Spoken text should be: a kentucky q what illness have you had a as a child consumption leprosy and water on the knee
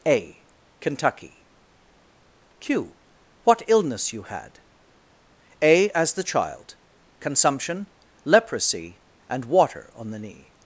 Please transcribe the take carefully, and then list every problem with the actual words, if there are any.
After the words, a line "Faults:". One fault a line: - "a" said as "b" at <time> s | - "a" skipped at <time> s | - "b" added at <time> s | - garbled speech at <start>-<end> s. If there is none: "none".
a kentucky q what illness you had a as the child consumption leprosy and water on the knee
Faults:
- "have" skipped at 4.1 s
- "a" said as "the" at 6.1 s